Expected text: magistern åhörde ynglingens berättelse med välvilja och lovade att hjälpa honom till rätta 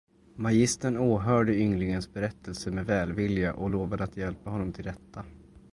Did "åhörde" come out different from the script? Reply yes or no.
no